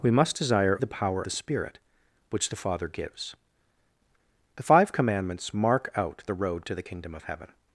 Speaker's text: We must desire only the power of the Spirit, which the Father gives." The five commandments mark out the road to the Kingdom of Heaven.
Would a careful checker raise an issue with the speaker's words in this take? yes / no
yes